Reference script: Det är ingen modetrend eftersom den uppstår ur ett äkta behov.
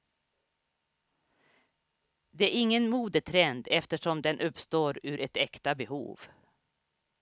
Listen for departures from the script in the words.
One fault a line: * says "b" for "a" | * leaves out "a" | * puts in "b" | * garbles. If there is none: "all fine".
all fine